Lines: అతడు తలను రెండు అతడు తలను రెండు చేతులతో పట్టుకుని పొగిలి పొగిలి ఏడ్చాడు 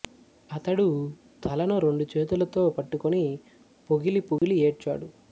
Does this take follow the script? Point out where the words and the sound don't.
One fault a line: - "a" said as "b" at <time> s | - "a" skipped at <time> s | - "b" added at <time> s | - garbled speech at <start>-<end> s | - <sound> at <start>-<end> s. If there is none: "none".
- "అతడు తలను రెండు" skipped at 2.0 s
- dropout at 4.4-4.4 s